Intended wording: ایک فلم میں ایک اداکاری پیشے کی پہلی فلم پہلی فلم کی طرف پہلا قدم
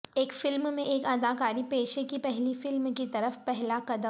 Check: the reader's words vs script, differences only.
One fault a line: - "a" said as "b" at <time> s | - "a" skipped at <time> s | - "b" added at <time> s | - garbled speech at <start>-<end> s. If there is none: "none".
- "پہلی فلم" skipped at 2.9 s